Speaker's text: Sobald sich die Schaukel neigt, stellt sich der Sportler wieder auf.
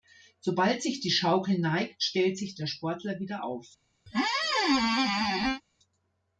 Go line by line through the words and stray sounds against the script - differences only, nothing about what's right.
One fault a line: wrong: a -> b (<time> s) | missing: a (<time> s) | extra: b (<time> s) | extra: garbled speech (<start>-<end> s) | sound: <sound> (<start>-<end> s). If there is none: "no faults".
sound: squeak (4.1-5.6 s)